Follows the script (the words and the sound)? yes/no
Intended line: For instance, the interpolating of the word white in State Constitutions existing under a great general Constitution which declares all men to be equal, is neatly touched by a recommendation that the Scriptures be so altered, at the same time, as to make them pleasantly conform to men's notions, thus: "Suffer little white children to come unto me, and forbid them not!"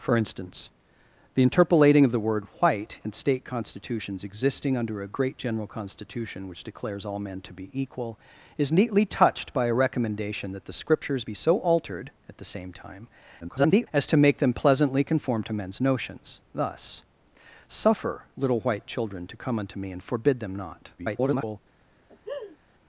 no